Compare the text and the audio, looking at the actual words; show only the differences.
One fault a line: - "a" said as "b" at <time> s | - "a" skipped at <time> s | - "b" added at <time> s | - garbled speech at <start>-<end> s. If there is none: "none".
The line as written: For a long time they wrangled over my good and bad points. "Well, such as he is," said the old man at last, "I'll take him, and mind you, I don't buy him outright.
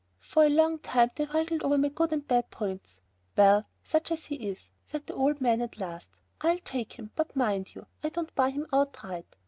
- "and" said as "but" at 7.1 s